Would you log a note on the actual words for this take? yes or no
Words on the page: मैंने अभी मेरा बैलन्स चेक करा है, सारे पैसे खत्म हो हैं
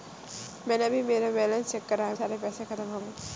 no